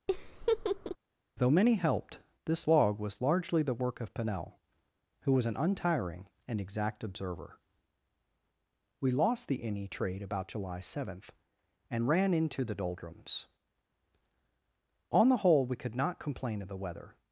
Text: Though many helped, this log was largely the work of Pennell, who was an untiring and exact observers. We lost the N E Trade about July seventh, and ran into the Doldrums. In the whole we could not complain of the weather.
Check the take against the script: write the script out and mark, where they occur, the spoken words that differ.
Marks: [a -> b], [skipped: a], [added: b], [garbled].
Though many helped, this log was largely the work of Pennell, who was an untiring and exact [observers. -> observer] We lost the N E Trade about July seventh, and ran into the Doldrums. [In -> On] the whole we could not complain of the weather.